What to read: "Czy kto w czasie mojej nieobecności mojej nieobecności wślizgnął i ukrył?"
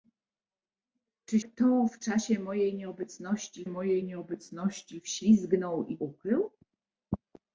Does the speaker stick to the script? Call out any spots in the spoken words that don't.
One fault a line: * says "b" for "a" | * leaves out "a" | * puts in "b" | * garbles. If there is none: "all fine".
all fine